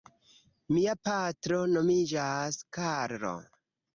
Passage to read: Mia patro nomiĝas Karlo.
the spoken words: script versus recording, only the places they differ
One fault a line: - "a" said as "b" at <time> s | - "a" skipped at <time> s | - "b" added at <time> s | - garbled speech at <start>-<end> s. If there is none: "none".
none